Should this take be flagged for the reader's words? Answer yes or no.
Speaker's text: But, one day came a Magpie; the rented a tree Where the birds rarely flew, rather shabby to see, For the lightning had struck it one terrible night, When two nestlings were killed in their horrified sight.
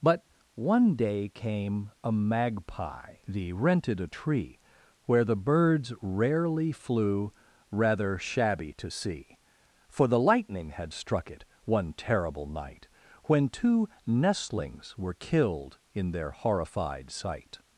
no